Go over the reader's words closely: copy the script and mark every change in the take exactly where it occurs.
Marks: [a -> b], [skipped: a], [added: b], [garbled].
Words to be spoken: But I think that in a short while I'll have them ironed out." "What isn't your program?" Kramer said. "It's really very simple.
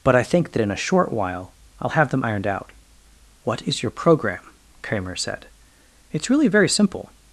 But I think that in a short while I'll have them ironed out." "What [isn't -> is] your program?" Kramer said. "It's really very simple.